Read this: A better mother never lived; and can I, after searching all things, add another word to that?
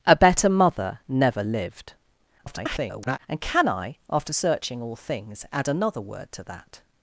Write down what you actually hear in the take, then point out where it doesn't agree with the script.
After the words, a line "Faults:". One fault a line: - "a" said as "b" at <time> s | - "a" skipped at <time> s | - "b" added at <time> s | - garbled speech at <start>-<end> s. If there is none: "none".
A better mother never lived; [garbled] and can I, after searching all things, add another word to that?
Faults:
- garbled speech at 2.4-3.2 s